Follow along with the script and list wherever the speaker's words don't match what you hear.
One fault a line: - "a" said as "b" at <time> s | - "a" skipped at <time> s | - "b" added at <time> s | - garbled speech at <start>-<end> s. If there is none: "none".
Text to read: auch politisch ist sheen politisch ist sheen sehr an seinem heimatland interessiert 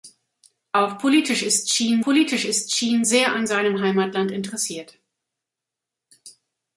none